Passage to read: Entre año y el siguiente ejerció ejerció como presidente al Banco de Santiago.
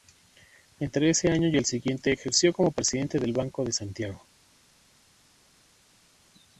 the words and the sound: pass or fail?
fail